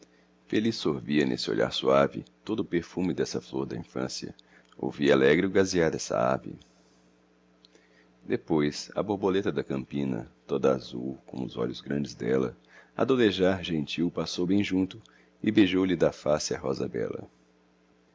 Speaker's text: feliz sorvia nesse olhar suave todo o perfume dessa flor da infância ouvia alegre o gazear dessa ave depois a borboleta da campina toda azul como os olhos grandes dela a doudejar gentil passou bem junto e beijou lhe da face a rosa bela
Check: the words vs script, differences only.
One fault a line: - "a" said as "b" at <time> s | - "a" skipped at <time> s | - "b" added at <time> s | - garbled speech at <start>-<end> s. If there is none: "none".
none